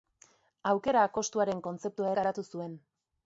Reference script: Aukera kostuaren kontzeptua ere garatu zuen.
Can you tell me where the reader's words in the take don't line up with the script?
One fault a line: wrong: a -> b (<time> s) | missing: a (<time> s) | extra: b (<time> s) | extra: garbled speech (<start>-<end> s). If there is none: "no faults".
missing: ere (2.1 s)